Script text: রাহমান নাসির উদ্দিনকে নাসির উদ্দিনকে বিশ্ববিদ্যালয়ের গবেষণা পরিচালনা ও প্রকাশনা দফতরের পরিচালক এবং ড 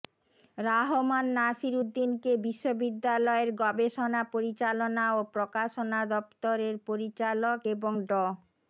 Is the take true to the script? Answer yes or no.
no